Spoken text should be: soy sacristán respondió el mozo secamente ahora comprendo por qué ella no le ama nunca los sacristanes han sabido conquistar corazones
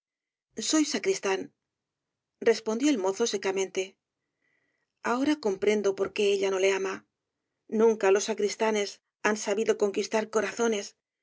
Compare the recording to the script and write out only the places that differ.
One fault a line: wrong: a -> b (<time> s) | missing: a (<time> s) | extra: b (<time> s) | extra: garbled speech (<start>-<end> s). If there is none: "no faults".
no faults